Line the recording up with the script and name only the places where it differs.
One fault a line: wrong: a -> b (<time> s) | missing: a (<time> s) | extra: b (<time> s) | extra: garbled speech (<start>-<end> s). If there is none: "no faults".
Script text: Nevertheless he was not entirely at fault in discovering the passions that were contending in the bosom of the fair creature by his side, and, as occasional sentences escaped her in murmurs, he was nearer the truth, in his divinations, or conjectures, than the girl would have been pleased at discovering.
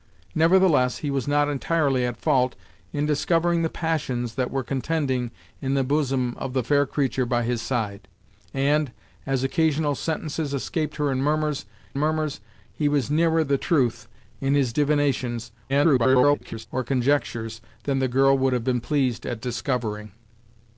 extra: murmurs (12.0 s)
extra: garbled speech (15.7-16.7 s)